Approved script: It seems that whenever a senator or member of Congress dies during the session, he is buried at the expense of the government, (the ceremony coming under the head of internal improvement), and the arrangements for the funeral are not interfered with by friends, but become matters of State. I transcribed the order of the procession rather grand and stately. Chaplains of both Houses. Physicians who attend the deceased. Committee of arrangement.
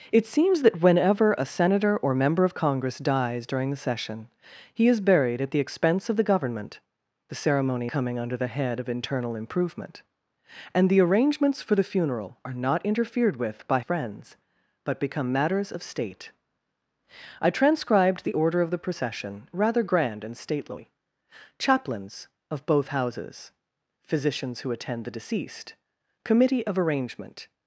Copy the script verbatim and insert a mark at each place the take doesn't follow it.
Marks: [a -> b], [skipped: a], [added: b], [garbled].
It seems that whenever a senator or member of Congress dies during the session, he is buried at the expense of the government, (the ceremony coming under the head of internal improvement), and the arrangements for the funeral are not interfered with by friends, but become matters of State. I transcribed the order of the procession rather grand and stately. Chaplains of both Houses. Physicians who attend the deceased. Committee of arrangement.